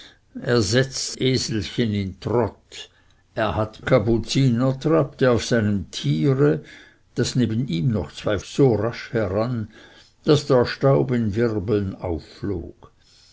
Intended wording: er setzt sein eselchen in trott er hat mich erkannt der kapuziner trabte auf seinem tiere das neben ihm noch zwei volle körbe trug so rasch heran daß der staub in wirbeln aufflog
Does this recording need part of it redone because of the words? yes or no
yes